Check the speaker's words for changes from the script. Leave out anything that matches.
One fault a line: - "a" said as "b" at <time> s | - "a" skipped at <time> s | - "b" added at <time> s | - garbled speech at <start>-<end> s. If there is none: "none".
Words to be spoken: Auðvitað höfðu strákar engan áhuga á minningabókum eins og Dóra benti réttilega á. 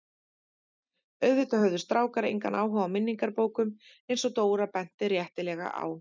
none